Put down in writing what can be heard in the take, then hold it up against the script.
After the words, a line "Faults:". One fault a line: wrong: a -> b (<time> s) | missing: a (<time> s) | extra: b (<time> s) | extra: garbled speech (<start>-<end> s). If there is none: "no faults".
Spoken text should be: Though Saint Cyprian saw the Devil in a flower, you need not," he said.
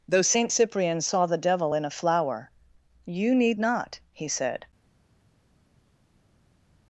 Though Saint Cyprian saw the Devil in a flower, you need not," he said.
Faults:
no faults